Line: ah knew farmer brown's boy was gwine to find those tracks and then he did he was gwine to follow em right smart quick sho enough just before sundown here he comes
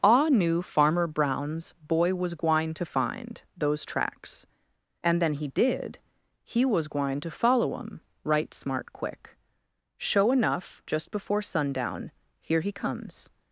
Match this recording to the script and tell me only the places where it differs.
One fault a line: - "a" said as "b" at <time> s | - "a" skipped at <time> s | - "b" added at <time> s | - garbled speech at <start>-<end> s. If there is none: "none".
none